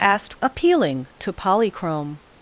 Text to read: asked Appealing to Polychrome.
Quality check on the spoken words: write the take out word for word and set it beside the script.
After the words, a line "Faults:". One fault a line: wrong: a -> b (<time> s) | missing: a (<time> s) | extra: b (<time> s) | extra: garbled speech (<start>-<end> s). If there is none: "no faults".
asked Appealing to Polychrome.
Faults:
no faults